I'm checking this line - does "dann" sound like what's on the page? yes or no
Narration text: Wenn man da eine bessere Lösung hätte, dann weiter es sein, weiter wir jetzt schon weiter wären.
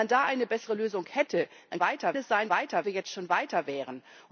yes